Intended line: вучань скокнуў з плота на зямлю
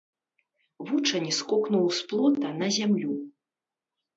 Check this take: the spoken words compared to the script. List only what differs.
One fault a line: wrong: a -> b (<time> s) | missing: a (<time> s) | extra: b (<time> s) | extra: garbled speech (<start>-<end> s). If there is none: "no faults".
no faults